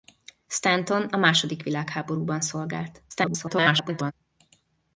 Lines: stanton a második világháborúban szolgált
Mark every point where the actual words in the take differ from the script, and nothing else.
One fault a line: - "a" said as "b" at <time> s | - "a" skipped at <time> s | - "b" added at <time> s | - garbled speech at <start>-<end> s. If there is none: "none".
- garbled speech at 3.1-4.1 s